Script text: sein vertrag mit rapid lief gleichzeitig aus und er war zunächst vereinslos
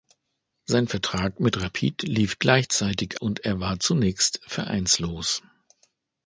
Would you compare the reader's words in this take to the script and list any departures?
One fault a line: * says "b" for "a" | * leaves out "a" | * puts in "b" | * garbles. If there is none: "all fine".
* leaves out "aus"